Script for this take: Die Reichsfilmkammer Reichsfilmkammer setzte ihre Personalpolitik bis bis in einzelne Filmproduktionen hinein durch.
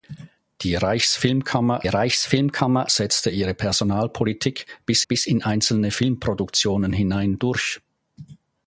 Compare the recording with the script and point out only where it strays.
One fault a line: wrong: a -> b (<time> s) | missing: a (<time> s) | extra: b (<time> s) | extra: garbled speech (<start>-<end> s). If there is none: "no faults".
no faults